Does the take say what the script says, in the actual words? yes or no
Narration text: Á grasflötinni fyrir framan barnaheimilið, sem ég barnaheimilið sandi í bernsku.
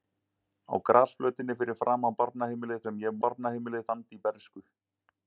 yes